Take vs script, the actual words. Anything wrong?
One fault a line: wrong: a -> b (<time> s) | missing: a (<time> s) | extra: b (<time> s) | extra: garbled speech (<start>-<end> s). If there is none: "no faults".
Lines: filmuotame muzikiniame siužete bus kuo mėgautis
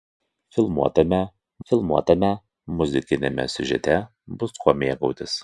extra: filmuotame (1.7 s)